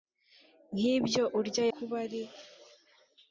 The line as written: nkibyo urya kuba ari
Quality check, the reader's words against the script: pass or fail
pass